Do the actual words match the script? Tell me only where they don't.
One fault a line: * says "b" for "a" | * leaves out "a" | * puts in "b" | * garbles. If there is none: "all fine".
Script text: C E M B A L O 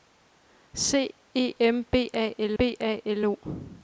* puts in "B A L"